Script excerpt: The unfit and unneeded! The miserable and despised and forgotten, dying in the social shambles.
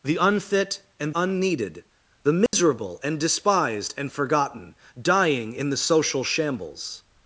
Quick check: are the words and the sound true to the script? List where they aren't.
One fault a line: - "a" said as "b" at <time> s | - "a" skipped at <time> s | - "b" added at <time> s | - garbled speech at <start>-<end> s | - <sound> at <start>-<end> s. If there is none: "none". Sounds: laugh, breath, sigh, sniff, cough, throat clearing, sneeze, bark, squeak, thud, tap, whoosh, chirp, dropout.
- dropout at 2.5-2.5 s